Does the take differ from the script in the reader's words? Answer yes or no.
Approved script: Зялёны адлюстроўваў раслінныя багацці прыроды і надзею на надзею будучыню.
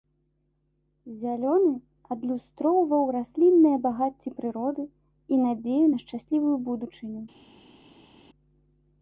yes